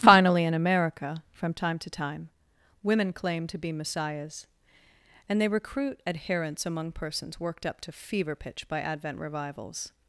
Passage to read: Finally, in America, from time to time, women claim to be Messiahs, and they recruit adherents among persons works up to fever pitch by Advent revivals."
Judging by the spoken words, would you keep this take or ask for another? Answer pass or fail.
fail